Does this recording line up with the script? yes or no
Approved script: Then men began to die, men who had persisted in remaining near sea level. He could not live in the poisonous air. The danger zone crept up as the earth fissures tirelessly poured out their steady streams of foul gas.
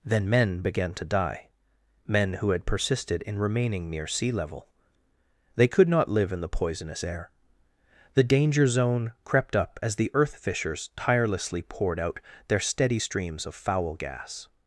no